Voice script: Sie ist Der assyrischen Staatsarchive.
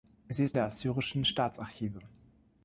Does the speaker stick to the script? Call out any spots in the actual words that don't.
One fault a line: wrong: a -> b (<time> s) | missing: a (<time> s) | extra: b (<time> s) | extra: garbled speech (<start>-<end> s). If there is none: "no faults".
no faults